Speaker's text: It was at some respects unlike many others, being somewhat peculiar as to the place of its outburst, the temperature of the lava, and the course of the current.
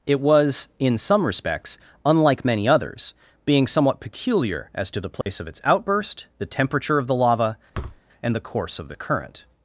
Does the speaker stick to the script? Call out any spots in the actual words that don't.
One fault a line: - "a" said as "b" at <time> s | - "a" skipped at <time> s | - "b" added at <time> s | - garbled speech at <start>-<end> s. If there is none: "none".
- "at" said as "in" at 0.8 s